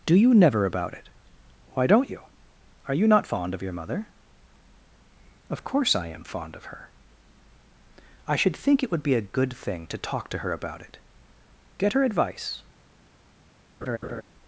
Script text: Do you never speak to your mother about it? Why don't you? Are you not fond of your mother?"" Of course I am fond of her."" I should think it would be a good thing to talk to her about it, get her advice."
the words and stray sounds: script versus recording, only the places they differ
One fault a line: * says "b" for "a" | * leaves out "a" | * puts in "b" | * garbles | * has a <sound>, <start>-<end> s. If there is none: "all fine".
* leaves out "speak to your mother"
* has a laugh, 13.8-14.2 s